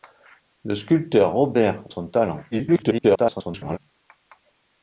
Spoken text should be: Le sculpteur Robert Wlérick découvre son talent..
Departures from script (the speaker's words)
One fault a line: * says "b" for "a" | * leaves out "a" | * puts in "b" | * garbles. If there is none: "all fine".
* leaves out "Wlérick découvre"
* garbles